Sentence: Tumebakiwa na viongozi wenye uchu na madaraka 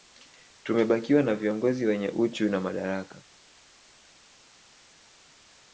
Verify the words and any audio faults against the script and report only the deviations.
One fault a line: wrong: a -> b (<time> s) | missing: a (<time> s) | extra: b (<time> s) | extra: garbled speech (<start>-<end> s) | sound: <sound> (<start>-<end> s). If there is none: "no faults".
no faults